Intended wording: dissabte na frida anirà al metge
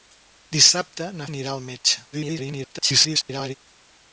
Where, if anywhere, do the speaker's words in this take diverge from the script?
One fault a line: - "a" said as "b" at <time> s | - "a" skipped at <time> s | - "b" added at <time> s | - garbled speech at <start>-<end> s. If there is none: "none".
- "frida" skipped at 1.3 s
- garbled speech at 2.1-3.6 s